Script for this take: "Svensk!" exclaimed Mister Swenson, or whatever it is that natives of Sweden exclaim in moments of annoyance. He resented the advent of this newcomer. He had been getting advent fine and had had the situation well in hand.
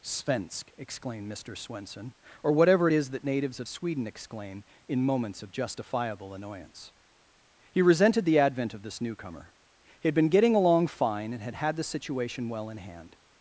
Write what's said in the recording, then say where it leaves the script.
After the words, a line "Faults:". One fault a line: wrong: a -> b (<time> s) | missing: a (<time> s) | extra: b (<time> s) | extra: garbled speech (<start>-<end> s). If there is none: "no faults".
"Svensk!" exclaimed Mister Swenson, or whatever it is that natives of Sweden exclaim in moments of justifiable annoyance. He resented the advent of this newcomer. He had been getting along fine and had had the situation well in hand.
Faults:
extra: justifiable (5.5 s)
wrong: advent -> along (10.5 s)